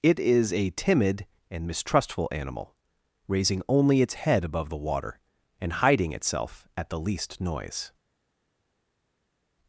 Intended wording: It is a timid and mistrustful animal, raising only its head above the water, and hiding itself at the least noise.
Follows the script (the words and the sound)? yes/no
yes